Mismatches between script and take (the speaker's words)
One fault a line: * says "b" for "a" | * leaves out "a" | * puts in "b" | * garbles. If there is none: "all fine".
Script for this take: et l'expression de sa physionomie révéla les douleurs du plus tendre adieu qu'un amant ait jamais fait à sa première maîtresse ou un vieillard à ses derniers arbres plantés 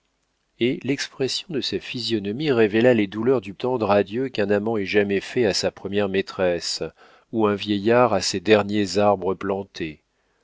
* leaves out "plus"